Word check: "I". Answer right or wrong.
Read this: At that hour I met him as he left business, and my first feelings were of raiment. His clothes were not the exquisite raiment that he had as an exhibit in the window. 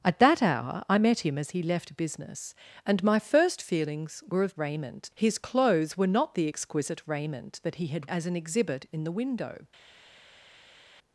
right